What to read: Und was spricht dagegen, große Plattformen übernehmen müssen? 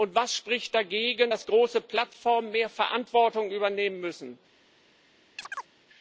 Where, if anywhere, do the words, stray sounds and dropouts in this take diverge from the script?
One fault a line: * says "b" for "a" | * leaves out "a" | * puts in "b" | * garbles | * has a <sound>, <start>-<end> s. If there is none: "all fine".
* puts in "dass"
* puts in "mehr Verantwortung"
* has a chirp, 5.4-5.7 s